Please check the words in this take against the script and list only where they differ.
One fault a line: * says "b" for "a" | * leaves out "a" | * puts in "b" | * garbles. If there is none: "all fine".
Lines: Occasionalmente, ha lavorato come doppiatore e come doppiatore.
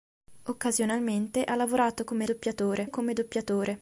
all fine